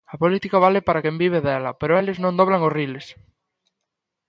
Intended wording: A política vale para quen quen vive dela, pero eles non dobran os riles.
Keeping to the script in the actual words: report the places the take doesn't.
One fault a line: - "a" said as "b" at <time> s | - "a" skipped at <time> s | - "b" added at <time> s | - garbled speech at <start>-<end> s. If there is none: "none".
- "quen" skipped at 1.1 s